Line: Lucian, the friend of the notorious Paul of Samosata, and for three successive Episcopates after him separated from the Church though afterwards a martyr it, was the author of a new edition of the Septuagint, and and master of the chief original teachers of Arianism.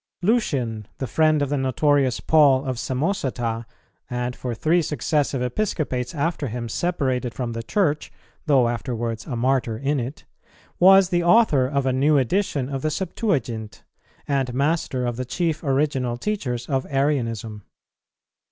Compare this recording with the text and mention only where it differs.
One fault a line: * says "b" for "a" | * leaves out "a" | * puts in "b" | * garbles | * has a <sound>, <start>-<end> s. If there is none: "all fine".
* puts in "in"
* leaves out "and"